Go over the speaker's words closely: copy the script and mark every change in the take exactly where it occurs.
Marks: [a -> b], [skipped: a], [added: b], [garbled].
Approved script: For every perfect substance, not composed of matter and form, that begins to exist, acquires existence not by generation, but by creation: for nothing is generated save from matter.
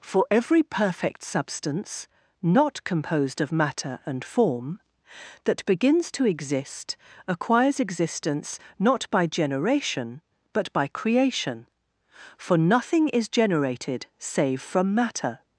For every perfect substance, not composed of matter and form, that begins to exist, acquires existence not by generation, but by creation: for nothing is generated save from matter.